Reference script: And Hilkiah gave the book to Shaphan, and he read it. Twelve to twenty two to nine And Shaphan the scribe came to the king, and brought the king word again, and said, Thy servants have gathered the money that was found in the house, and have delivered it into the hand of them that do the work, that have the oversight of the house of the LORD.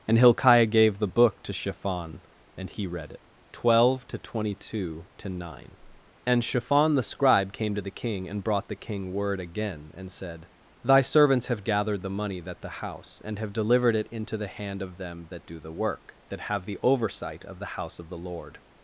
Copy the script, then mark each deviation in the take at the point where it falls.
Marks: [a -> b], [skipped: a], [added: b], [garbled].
And Hilkiah gave the book to Shaphan, and he read it. Twelve to twenty two to nine And Shaphan the scribe came to the king, and brought the king word again, and said, Thy servants have gathered the money that [skipped: was found in] the house, and have delivered it into the hand of them that do the work, that have the oversight of the house of the LORD.